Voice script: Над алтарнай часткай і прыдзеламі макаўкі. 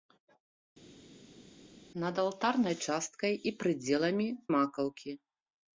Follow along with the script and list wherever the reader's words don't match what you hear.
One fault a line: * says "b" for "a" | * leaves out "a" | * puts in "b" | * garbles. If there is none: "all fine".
all fine